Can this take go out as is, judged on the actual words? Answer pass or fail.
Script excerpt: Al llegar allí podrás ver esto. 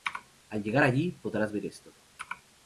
pass